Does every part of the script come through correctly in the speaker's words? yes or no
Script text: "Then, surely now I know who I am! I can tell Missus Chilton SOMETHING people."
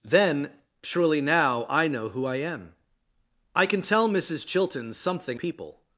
yes